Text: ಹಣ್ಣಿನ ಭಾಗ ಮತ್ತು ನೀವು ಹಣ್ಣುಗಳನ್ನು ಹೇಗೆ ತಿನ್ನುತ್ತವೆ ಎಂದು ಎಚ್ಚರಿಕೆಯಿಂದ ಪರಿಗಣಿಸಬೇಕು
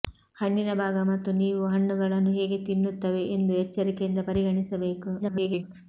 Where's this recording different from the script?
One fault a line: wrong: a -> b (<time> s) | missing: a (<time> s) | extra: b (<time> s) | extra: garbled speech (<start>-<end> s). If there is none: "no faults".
extra: garbled speech (5.2-5.6 s)